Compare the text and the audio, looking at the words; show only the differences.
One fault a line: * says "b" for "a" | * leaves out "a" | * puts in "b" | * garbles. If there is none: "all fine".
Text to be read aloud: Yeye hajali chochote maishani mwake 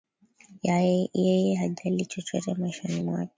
all fine